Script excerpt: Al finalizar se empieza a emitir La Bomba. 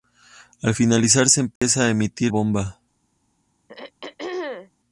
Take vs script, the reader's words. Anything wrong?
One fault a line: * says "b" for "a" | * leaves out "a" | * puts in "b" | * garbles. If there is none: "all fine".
* leaves out "La"